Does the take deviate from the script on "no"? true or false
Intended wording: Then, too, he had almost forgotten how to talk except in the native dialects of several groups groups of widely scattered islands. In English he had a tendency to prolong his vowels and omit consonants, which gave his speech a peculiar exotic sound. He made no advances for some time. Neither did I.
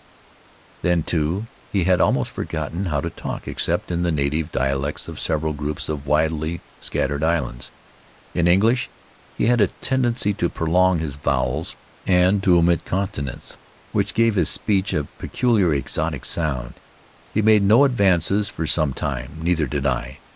false